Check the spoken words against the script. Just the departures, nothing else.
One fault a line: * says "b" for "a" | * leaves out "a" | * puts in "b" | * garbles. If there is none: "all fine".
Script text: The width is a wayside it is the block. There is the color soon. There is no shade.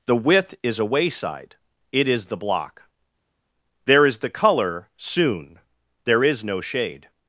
all fine